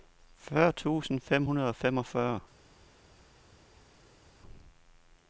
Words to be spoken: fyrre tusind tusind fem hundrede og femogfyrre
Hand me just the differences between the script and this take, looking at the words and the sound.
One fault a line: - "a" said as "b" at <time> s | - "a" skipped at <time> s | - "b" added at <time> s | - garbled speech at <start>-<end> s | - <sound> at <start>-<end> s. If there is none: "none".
- "tusind" skipped at 1.2 s